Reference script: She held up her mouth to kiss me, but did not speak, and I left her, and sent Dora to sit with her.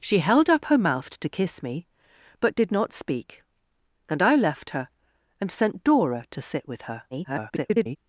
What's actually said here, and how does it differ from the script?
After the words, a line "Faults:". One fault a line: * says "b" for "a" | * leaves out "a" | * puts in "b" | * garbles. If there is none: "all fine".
She held up her mouth to kiss me, but did not speak, and I left her, and sent Dora to sit with her. [garbled]
Faults:
* garbles